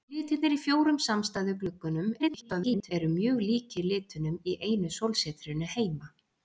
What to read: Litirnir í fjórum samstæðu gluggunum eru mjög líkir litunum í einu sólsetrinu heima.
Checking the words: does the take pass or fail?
fail